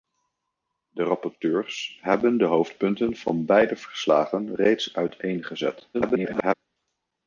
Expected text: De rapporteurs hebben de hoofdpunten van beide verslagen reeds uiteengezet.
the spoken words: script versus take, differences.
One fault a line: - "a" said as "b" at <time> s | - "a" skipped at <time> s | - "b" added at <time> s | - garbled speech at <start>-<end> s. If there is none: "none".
- garbled speech at 5.9-6.5 s